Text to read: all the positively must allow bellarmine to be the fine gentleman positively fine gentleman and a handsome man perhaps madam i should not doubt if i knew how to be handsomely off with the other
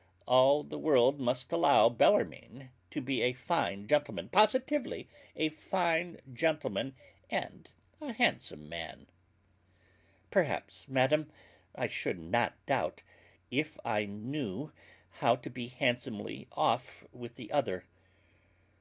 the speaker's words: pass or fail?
fail